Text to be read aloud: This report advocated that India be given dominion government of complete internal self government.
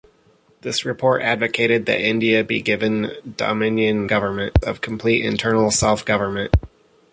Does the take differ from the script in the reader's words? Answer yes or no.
no